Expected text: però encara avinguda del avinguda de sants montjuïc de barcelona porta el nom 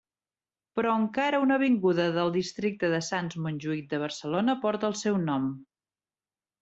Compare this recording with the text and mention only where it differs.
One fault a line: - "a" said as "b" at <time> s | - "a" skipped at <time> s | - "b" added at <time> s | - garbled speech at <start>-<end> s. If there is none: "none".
- "una" added at 1.4 s
- "avinguda" said as "districte" at 2.4 s
- "seu" added at 5.1 s